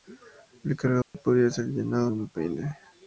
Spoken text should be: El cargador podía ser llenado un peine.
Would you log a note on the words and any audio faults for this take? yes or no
yes